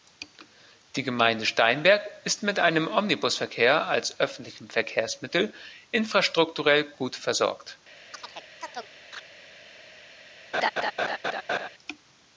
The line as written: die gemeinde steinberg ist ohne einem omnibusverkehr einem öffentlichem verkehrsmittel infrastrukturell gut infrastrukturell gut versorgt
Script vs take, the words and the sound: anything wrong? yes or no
yes